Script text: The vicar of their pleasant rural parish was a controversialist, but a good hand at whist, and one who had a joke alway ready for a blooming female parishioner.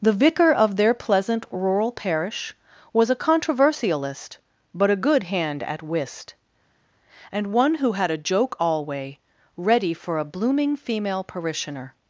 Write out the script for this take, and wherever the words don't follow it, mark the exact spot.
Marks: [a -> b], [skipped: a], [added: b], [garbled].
The vicar of their pleasant rural parish was a controversialist, but a good hand at whist, and one who had a joke alway ready for a blooming female parishioner.